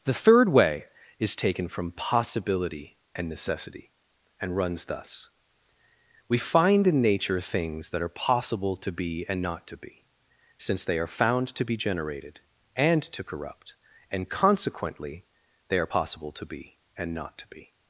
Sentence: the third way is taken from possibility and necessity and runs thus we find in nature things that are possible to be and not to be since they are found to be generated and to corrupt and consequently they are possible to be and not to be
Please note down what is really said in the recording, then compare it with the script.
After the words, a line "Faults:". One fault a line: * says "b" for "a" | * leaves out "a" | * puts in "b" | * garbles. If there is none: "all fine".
the third way is taken from possibility and necessity and runs thus we find in nature things that are possible to be and not to be since they are found to be generated and to corrupt and consequently they are possible to be and not to be
Faults:
all fine